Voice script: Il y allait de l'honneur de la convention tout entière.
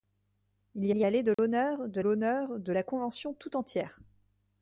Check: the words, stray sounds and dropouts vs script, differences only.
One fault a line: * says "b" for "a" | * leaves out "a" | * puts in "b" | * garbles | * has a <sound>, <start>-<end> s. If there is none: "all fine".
* puts in "y"
* has a dropout, 1.3-1.4 s
* puts in "l'honneur de"